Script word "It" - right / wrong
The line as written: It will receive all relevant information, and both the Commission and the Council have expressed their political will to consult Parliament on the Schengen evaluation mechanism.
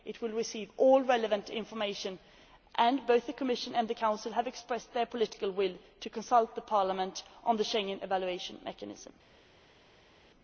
right